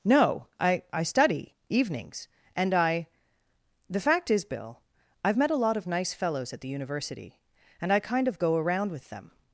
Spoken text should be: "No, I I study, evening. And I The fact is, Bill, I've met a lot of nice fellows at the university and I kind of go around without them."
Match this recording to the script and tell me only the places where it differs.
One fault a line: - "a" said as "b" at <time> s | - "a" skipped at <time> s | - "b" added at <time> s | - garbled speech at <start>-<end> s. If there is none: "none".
- "evening" said as "evenings" at 1.7 s
- "without" said as "with" at 8.9 s